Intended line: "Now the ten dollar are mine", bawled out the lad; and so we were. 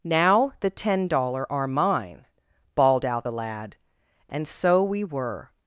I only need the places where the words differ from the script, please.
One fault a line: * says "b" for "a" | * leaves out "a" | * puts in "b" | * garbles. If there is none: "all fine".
all fine